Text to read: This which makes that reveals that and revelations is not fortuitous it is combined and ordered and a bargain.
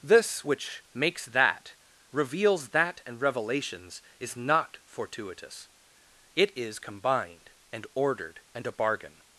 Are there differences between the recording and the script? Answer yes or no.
no